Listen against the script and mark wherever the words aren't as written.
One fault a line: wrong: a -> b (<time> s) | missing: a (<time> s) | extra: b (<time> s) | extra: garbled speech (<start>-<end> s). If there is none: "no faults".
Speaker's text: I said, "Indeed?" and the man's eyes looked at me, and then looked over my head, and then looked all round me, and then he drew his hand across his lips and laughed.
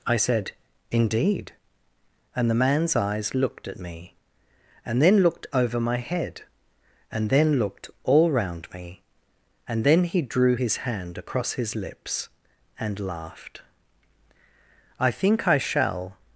extra: I think I shall (15.0 s)